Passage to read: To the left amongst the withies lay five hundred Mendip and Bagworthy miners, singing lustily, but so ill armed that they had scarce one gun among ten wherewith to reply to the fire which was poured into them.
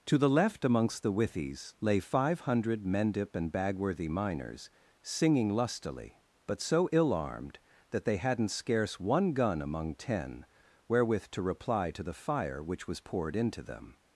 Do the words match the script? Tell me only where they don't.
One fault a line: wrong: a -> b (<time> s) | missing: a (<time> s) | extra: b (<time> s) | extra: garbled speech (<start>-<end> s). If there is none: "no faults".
wrong: had -> hadn't (8.2 s)